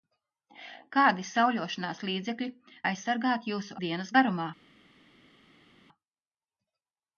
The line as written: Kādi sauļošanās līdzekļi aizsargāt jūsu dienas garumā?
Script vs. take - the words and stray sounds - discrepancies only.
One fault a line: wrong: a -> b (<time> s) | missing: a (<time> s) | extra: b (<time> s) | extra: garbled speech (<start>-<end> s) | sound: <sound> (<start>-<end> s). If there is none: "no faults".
no faults